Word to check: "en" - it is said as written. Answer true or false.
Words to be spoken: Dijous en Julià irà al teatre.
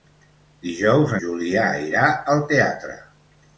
false